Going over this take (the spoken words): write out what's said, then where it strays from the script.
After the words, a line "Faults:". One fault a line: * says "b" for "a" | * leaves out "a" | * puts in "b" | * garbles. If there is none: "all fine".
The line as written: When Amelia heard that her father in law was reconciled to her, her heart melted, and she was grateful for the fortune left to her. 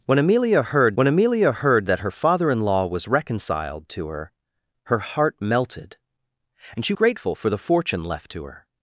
When Amelia heard when Amelia heard that her father in law was reconciled to her, her heart melted, and she grateful for the fortune left to her.
Faults:
* puts in "when Amelia heard"
* leaves out "was"